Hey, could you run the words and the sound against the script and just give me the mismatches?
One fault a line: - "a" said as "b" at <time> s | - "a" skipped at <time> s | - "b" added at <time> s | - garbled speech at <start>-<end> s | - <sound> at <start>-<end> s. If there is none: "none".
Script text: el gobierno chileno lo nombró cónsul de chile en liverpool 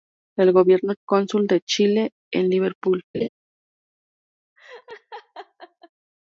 - "chileno lo nombró" skipped at 0.9 s
- laugh at 3.1-3.3 s
- laugh at 4.6-5.9 s